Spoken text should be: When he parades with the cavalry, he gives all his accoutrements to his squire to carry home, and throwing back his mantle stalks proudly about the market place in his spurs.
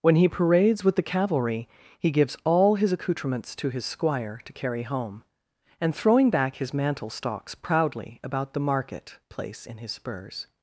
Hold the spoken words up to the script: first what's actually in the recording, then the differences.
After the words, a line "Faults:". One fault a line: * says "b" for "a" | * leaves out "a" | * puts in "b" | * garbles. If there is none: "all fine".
When he parades with the cavalry, he gives all his accoutrements to his squire to carry home, and throwing back his mantle stalks proudly about the market place in his spurs.
Faults:
all fine